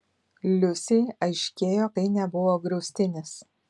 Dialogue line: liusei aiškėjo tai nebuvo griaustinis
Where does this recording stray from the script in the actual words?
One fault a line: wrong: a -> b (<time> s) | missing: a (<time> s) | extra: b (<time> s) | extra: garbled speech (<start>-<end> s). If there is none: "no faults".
no faults